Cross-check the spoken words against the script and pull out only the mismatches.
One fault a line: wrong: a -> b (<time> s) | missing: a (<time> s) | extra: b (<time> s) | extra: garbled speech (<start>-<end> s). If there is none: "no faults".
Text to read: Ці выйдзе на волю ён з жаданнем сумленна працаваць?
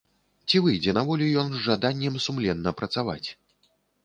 no faults